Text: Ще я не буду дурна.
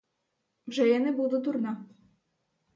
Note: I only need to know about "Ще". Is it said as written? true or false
false